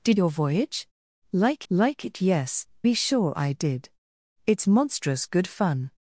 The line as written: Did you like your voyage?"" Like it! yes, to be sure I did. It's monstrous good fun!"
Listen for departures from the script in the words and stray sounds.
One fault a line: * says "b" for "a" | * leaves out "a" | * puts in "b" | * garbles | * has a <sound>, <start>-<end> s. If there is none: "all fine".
* leaves out "you like"
* puts in "like"
* leaves out "to"